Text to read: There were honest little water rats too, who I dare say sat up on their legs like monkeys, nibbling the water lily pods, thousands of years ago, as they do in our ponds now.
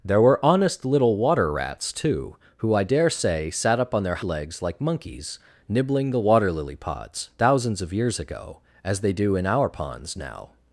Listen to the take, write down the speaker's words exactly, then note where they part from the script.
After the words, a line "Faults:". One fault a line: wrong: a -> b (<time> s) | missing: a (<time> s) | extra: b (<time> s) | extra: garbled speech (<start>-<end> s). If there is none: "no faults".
There were honest little water rats too, who I dare say sat up on their legs like monkeys, nibbling the water lily pods, thousands of years ago, as they do in our ponds now.
Faults:
no faults